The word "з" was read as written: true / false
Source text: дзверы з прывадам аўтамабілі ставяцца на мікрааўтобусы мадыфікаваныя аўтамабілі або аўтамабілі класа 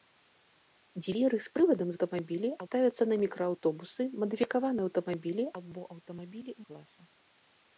true